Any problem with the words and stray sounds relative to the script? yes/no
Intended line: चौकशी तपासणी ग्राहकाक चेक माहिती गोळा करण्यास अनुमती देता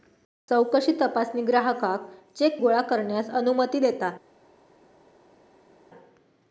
yes